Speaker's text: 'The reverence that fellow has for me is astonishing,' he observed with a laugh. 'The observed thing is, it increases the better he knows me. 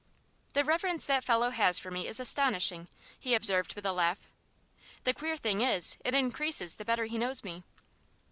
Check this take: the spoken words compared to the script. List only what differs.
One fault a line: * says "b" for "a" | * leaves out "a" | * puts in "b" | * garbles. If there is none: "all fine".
* says "queer" for "observed"